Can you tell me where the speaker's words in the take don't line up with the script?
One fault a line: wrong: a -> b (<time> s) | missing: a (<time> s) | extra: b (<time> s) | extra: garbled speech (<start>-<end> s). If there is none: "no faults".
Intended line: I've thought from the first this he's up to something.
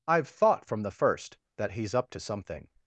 wrong: this -> that (1.6 s)